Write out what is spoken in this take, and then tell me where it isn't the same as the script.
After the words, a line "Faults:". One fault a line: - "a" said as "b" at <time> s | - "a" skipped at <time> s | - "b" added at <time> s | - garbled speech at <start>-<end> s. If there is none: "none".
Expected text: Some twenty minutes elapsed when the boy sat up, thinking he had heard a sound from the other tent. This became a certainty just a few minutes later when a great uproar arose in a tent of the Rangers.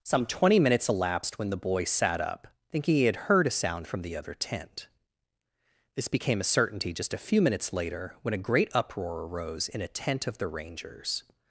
Some twenty minutes elapsed when the boy sat up, thinking he had heard a sound from the other tent. This became a certainty just a few minutes later when a great uproar arose in a tent of the Rangers.
Faults:
none